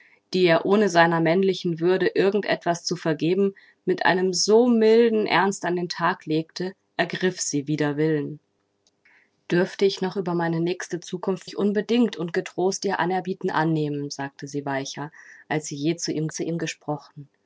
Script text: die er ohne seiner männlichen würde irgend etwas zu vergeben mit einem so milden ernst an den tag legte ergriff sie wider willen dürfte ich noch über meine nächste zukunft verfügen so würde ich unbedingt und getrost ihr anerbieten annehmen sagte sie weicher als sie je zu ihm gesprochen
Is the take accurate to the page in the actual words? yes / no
no